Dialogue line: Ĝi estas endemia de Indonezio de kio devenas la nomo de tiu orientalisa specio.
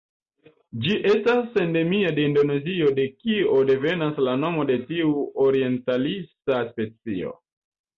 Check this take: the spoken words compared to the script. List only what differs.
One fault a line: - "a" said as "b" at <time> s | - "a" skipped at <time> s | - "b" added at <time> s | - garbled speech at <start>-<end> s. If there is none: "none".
none